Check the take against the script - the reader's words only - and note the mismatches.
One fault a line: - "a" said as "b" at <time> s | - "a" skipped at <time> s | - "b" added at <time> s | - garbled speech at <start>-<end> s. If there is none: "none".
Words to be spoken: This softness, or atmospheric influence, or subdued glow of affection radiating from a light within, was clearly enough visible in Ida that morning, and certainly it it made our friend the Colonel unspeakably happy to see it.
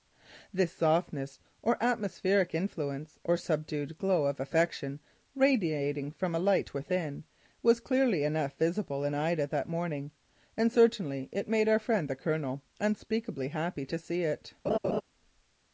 - "it" skipped at 11.5 s